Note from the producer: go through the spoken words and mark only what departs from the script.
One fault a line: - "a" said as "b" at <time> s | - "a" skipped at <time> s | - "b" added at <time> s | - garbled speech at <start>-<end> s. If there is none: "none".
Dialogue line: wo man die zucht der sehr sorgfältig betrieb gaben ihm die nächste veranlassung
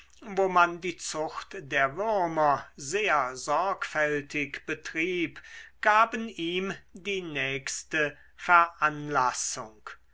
- "würmer" added at 1.9 s